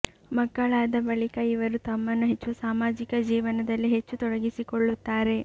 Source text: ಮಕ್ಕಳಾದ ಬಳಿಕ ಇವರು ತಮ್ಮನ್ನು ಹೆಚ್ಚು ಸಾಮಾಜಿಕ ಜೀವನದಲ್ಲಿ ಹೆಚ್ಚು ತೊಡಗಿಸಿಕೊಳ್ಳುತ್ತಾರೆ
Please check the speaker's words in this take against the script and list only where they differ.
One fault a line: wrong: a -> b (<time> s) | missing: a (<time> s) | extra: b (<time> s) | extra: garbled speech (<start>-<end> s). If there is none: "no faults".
no faults